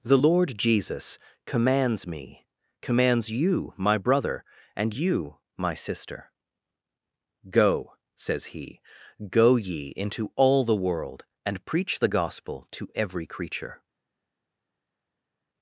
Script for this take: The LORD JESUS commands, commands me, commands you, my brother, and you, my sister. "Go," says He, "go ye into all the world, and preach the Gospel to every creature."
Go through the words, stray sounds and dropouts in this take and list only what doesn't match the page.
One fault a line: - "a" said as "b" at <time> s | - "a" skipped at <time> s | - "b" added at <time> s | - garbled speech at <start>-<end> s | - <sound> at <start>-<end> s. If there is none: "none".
- "commands" skipped at 2.1 s